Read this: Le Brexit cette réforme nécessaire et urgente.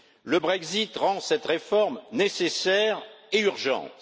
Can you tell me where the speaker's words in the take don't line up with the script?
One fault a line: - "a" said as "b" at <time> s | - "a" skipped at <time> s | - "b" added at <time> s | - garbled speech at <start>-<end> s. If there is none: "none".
- "rend" added at 1.0 s